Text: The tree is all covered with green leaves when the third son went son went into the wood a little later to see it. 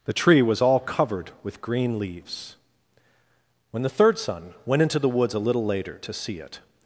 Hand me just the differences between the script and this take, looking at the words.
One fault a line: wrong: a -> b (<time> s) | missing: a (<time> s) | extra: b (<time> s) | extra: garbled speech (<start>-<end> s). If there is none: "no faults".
wrong: is -> was (0.4 s)
missing: son went (4.8 s)
wrong: wood -> woods (5.1 s)